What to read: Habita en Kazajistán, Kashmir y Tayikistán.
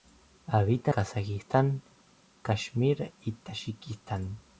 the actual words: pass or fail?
fail